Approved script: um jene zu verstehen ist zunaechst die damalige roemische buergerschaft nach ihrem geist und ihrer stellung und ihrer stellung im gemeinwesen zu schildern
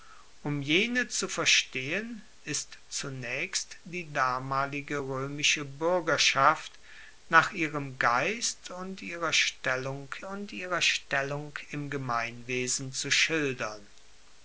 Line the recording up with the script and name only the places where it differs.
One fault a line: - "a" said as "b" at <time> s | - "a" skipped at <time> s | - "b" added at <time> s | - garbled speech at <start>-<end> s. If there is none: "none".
none